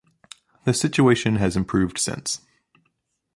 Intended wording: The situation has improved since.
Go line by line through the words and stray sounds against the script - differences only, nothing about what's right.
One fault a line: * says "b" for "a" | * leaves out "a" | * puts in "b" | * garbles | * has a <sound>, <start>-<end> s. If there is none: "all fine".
all fine